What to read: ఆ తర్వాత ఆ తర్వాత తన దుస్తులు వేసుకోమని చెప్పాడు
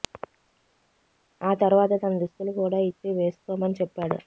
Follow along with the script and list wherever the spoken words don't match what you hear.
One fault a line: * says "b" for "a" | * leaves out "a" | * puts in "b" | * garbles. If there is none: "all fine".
* says "తన దుస్తులు కూడా ఇచ్చి" for "ఆ తర్వాత తన దుస్తులు"